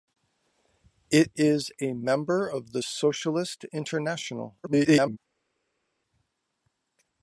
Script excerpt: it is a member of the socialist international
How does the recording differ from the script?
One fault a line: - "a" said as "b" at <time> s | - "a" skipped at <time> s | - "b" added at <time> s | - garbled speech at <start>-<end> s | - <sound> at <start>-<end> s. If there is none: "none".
- garbled speech at 4.6-5.2 s